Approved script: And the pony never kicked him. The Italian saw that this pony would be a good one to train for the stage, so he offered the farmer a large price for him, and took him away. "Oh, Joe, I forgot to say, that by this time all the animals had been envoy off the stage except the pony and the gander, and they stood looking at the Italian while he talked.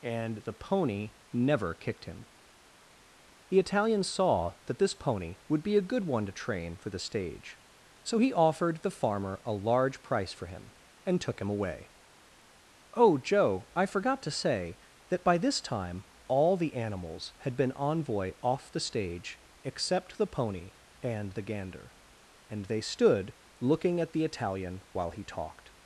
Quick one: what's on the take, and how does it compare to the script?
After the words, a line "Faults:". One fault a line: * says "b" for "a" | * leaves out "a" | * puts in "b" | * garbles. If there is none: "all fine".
And the pony never kicked him. The Italian saw that this pony would be a good one to train for the stage, so he offered the farmer a large price for him, and took him away. "Oh, Joe, I forgot to say, that by this time all the animals had been envoy off the stage except the pony and the gander, and they stood looking at the Italian while he talked.
Faults:
all fine